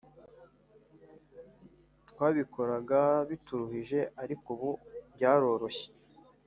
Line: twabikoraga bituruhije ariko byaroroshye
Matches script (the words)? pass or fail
fail